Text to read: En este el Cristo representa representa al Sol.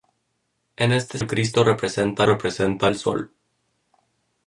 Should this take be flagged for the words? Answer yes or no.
no